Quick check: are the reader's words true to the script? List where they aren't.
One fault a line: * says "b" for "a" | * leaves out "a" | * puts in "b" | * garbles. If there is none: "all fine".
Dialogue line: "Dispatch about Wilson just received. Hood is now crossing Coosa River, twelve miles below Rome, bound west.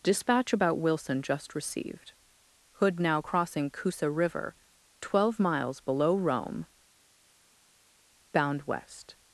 * leaves out "is"